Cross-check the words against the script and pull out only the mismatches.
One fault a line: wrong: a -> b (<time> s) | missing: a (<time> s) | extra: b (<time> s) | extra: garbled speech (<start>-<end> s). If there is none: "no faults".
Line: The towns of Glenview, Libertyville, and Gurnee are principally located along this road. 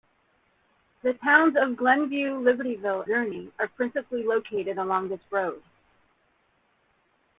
missing: and (3.1 s)